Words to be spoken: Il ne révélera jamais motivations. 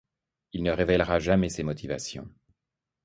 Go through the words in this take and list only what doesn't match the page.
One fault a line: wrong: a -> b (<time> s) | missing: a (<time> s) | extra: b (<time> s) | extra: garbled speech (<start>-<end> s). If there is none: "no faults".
extra: ses (1.5 s)